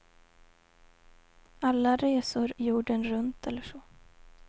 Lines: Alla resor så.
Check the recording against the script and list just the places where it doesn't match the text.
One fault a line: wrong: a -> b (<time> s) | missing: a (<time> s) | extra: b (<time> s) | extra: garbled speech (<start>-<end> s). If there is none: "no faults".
extra: jorden runt eller (2.6 s)